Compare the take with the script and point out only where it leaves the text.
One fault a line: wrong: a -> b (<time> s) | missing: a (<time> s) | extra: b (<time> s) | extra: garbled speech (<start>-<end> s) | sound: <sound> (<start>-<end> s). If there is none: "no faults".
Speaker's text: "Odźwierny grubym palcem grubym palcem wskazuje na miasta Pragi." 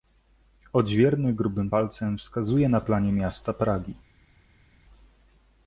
missing: grubym palcem (2.2 s)
extra: planie (2.8 s)